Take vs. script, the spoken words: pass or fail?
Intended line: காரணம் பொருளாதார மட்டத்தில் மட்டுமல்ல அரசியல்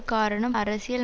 fail